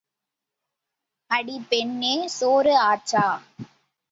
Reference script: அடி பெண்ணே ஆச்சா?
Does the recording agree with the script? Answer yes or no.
no